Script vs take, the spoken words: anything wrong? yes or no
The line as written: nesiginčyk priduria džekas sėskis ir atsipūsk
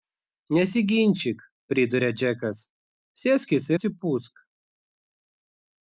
yes